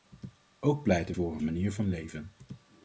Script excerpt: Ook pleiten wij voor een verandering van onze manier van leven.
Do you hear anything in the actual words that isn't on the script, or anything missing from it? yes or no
yes